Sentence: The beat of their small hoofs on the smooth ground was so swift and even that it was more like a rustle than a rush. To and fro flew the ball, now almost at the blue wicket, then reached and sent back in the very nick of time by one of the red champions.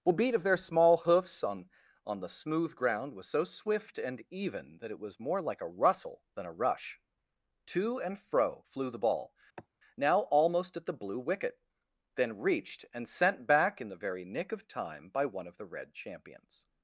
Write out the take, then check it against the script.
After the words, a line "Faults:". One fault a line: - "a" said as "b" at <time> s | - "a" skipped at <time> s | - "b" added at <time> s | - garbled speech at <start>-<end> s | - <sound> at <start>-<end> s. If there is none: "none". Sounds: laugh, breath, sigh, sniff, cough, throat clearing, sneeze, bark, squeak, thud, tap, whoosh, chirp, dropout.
The beat of their small hoofs on on the smooth ground was so swift and even that it was more like a rustle than a rush. To and fro flew the ball, now almost at the blue wicket, then reached and sent back in the very nick of time by one of the red champions.
Faults:
- "on" added at 2.0 s
- sigh at 9.6-9.7 s